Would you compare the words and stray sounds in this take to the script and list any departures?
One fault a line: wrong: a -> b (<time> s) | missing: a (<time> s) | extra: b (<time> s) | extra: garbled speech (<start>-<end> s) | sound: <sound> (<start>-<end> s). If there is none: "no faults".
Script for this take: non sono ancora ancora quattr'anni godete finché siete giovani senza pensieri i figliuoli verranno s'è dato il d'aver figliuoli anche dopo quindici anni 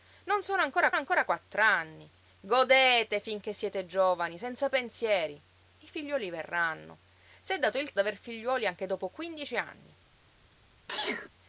sound: sneeze (10.9-11.3 s)